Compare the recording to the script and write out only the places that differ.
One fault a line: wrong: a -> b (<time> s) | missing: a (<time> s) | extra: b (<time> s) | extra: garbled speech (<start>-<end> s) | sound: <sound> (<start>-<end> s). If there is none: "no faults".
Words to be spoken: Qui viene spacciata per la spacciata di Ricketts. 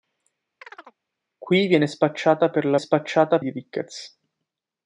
sound: chirp (0.6-1.0 s)